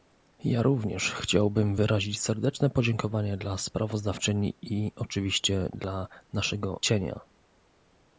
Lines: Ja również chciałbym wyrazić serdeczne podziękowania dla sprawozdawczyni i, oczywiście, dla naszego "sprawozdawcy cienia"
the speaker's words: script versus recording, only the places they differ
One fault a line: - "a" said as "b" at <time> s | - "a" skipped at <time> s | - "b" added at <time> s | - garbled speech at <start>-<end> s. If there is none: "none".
- "sprawozdawcy" skipped at 6.8 s